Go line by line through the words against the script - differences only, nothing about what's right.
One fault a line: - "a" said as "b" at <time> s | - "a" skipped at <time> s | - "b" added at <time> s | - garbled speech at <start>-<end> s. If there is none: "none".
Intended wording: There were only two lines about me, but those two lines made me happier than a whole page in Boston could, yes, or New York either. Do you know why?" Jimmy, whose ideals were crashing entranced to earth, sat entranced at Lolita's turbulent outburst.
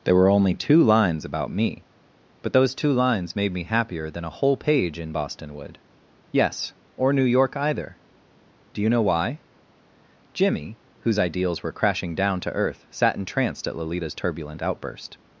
- "could" said as "would" at 5.5 s
- "entranced" said as "down" at 12.2 s